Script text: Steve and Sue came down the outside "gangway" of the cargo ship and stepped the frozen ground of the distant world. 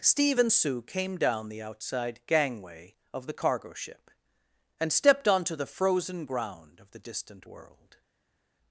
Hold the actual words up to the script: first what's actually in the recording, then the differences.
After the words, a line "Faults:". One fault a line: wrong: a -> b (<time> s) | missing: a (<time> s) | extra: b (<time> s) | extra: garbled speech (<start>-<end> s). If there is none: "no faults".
Steve and Sue came down the outside "gangway" of the cargo ship and stepped onto the frozen ground of the distant world.
Faults:
extra: onto (5.3 s)